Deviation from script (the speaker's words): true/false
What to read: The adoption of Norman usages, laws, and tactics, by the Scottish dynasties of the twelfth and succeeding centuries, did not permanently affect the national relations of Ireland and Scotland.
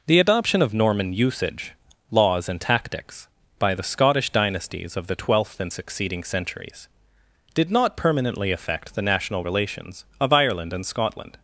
true